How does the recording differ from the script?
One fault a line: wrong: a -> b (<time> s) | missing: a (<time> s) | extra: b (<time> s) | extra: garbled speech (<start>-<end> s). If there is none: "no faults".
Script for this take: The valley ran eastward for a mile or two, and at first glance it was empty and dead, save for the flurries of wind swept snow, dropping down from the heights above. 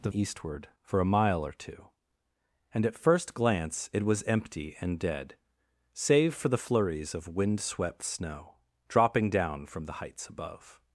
missing: valley ran (0.1 s)